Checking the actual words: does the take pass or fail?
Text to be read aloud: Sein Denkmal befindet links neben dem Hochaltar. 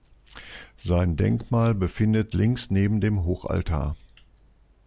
pass